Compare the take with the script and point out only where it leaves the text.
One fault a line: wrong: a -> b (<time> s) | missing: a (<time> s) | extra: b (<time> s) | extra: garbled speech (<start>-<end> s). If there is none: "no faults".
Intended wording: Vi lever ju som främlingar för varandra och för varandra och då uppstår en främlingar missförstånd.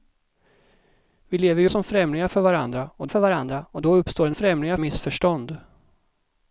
no faults